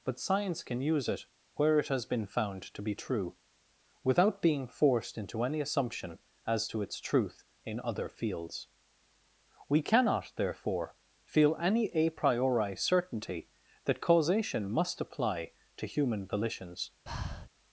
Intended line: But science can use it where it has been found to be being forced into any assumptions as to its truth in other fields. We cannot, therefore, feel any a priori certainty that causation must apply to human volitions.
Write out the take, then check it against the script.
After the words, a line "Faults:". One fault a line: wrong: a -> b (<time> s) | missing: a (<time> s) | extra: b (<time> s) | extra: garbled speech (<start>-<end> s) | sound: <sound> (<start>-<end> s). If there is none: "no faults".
But science can use it where it has been found to be true, without being forced into any assumption as to its truth in other fields. We cannot, therefore, feel any a priori certainty that causation must apply to human volitions.
Faults:
extra: true without (3.0 s)
wrong: assumptions -> assumption (5.6 s)
sound: breath (17.1-17.5 s)